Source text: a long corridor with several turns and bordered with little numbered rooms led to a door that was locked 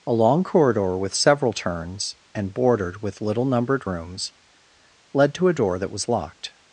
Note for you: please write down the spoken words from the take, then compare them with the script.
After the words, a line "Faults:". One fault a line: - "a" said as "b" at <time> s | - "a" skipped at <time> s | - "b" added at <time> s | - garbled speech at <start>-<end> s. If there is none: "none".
a long corridor with several turns and bordered with little numbered rooms led to a door that was locked
Faults:
none